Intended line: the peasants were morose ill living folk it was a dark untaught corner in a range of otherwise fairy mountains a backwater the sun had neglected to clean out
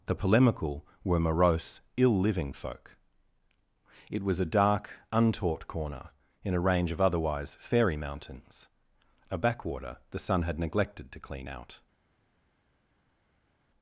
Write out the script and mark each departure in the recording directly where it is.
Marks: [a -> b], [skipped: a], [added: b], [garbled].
the [peasants -> polemical] were morose ill living folk it was a dark untaught corner in a range of otherwise fairy mountains a backwater the sun had neglected to clean out